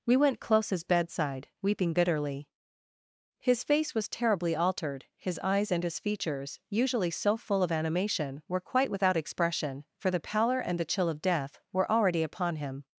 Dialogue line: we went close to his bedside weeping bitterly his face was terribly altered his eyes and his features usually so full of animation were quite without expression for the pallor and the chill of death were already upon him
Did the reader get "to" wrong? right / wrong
wrong